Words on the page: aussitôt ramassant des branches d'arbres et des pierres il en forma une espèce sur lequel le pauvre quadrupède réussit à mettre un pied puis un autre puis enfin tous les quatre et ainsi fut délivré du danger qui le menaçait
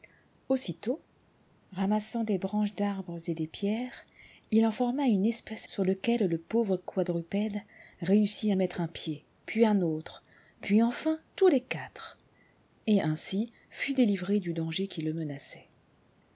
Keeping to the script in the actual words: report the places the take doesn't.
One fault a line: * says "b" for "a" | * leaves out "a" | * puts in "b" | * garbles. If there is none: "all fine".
all fine